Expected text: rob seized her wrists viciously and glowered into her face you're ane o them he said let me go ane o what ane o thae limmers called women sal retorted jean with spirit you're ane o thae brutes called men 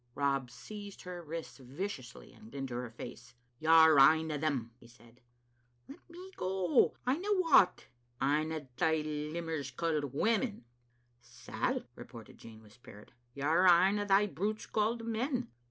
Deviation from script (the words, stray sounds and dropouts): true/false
true